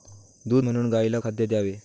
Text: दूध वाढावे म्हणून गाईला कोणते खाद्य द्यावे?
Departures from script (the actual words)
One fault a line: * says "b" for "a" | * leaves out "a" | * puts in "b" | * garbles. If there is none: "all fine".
* leaves out "वाढावे"
* leaves out "कोणते"